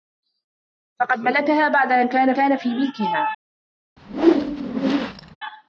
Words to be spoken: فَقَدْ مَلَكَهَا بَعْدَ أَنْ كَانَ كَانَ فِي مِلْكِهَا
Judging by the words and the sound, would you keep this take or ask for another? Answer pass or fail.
fail